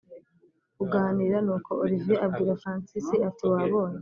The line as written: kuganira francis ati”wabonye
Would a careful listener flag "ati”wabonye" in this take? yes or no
no